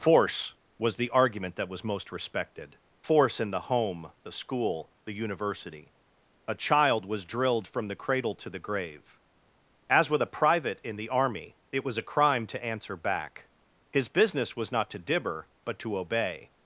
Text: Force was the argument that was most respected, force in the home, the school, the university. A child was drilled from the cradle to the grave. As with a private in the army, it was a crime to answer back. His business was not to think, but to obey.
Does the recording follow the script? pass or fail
fail